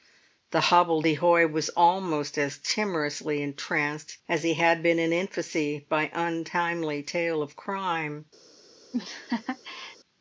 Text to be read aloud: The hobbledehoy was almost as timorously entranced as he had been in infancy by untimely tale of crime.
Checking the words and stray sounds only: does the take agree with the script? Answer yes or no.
no